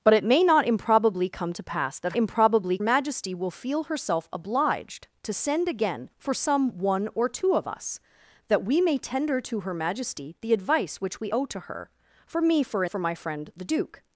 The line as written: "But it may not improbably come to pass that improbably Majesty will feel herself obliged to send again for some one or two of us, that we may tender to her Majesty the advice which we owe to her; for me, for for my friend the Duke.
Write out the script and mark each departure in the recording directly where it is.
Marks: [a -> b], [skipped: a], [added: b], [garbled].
"But it may not improbably come to pass that improbably Majesty will feel herself obliged to send again for some one or two of us, that we may tender to her Majesty the advice which we owe to her; for me, for for my friend the Duke.